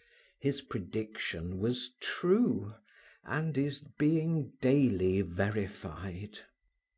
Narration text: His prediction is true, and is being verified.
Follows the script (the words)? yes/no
no